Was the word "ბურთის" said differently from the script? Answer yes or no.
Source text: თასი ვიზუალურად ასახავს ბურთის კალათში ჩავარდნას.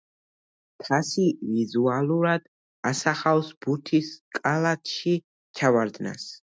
no